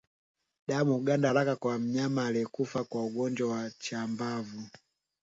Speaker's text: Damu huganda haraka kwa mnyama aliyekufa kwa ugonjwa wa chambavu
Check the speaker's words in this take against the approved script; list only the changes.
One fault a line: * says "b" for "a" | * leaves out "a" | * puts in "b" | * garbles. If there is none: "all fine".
all fine